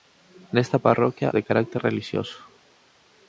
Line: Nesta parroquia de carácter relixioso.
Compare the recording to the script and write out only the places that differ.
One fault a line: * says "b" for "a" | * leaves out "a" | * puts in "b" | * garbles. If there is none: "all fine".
all fine